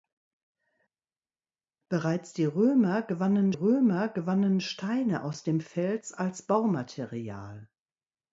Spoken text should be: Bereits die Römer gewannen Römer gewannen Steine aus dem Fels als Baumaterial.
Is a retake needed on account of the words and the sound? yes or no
no